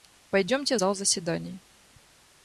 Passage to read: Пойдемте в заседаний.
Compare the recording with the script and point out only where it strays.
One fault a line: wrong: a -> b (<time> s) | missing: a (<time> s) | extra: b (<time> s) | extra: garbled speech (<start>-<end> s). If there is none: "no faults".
extra: зал (0.7 s)